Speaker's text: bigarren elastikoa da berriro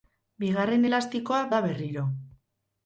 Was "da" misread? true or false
false